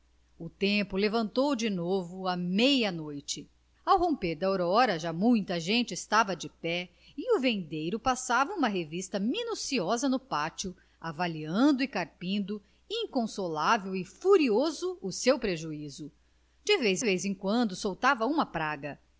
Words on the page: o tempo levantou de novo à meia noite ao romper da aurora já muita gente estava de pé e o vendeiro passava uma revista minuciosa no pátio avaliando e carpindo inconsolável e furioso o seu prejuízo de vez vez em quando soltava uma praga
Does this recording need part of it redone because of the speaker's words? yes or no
no